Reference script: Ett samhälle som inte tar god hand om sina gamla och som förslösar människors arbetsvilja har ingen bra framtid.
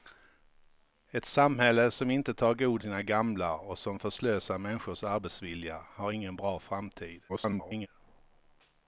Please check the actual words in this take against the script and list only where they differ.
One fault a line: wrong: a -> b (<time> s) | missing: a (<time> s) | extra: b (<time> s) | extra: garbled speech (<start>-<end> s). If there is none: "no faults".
missing: hand om (2.8 s)
extra: garbled speech (7.3-7.9 s)